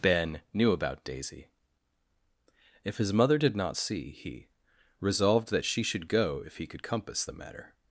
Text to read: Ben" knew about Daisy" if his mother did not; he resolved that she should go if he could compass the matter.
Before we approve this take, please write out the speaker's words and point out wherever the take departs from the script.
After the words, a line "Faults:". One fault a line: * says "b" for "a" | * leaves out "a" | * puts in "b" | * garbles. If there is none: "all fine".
Ben" knew about Daisy" if his mother did not; see he resolved that she should go if he could compass the matter.
Faults:
* puts in "see"